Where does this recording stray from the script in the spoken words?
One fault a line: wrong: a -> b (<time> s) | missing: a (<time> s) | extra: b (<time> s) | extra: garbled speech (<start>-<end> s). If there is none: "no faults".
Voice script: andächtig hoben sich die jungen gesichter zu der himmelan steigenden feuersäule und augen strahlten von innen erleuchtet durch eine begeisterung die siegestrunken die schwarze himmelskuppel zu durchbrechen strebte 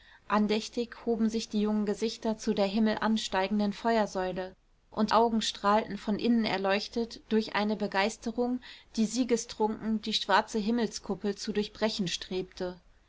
no faults